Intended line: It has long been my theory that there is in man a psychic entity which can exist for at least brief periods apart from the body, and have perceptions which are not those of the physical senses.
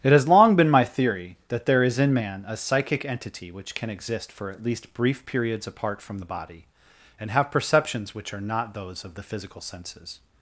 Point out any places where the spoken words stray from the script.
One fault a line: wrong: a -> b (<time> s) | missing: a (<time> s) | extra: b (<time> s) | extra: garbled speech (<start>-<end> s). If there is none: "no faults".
no faults